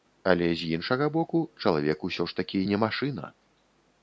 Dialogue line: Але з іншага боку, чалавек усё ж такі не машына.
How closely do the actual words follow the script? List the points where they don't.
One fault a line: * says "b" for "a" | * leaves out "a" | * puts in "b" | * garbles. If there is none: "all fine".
all fine